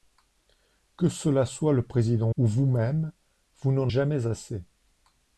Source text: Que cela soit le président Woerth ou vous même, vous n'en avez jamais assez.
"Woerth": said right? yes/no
no